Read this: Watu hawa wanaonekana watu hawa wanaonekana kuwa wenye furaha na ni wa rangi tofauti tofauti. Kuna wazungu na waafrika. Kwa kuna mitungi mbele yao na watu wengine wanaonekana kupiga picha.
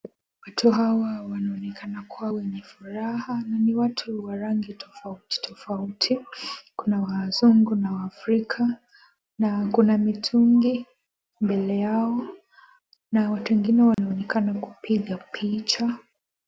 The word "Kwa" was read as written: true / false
false